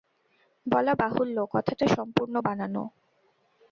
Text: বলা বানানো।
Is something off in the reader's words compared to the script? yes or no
yes